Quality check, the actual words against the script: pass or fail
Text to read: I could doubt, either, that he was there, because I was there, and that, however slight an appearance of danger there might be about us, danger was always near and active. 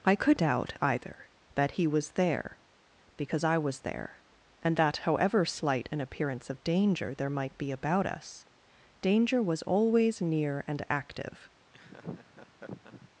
pass